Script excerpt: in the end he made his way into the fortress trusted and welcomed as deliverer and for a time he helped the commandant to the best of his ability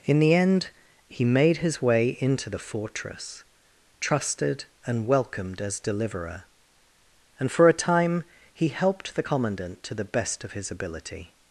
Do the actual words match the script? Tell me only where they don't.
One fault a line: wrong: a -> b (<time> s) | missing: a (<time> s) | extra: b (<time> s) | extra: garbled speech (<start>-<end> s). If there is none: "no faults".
no faults